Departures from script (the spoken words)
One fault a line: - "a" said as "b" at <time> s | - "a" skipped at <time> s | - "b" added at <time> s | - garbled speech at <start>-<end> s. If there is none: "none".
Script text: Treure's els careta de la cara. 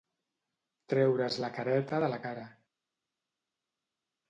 - "els" said as "la" at 1.4 s